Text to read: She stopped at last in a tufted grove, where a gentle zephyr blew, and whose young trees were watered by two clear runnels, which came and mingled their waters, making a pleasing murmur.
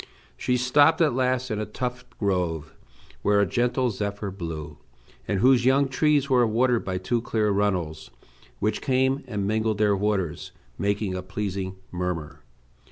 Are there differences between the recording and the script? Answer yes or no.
no